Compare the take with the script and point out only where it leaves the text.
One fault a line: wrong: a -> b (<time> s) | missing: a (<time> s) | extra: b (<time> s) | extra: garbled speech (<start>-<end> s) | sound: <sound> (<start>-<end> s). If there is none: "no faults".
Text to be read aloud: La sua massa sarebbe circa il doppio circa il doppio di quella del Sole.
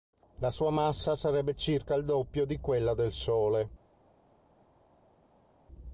missing: circa il doppio (2.5 s)